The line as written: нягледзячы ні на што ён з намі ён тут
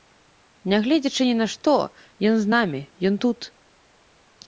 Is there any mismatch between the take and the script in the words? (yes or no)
no